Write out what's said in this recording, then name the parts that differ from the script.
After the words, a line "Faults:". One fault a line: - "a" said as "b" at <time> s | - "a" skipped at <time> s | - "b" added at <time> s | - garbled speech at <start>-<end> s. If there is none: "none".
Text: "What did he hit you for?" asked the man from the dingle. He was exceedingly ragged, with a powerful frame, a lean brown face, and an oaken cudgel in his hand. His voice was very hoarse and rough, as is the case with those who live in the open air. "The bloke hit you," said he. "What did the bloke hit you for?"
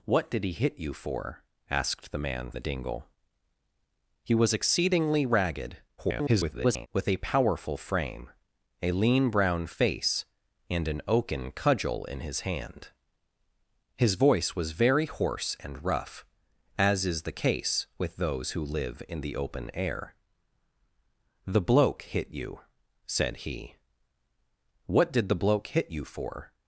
"What did he hit you for?" asked the man the dingle. He was exceedingly ragged, [garbled] with a powerful frame, a lean brown face, and an oaken cudgel in his hand. His voice was very hoarse and rough, as is the case with those who live in the open air. "The bloke hit you," said he. "What did the bloke hit you for?"
Faults:
- "from" skipped at 2.5 s
- garbled speech at 6.0-6.9 s